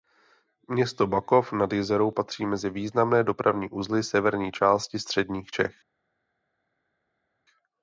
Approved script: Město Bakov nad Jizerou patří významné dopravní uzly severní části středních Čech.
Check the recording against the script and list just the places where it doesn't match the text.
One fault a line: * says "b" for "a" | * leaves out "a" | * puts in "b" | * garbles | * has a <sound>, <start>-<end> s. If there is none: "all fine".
* puts in "mezi"